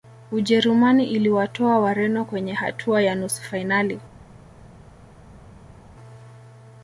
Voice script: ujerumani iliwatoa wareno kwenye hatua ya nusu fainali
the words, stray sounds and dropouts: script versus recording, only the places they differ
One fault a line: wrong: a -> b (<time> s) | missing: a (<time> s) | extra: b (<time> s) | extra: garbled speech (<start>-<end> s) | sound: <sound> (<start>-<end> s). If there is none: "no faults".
no faults